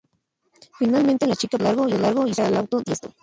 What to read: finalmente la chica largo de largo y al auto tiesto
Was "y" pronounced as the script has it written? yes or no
yes